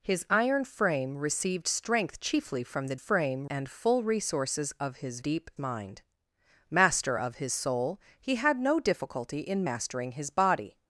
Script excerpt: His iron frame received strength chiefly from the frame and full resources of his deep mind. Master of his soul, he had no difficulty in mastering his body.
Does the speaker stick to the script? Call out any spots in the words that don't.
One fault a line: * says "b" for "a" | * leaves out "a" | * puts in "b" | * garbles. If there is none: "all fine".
all fine